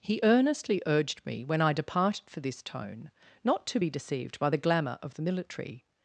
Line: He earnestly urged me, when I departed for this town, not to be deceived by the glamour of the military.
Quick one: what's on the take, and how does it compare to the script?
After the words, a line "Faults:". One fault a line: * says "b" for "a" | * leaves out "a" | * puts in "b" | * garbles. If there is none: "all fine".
He earnestly urged me, when I departed for this tone, not to be deceived by the glamour of the military.
Faults:
* says "tone" for "town"